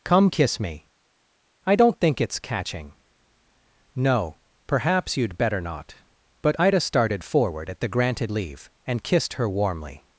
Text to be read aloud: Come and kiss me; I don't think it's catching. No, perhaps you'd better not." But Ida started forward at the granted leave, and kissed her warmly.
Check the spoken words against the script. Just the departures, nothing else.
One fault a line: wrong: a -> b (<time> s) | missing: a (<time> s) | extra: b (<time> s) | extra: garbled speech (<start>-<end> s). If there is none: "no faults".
missing: and (0.3 s)